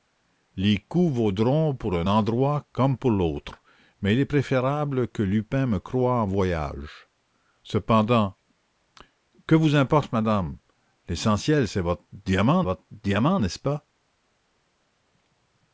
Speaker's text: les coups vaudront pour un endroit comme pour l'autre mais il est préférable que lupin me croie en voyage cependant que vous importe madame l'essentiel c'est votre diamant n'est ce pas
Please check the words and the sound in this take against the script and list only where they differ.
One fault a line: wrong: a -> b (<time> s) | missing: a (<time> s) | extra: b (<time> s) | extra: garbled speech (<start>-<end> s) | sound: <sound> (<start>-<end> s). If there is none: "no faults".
extra: votre diamant (12.6 s)